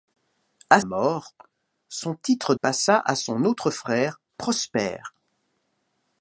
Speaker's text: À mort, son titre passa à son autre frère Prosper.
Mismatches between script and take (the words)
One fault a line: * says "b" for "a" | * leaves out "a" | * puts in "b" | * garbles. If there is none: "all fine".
all fine